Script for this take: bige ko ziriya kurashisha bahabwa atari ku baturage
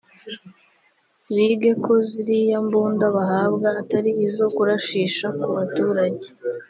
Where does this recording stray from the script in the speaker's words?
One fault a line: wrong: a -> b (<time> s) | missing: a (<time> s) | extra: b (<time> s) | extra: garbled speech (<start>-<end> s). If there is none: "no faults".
wrong: kurashisha -> mbunda (2.6 s)
extra: izo kurashisha (4.3 s)